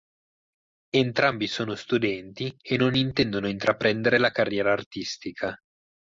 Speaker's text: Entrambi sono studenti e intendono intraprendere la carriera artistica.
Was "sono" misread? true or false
false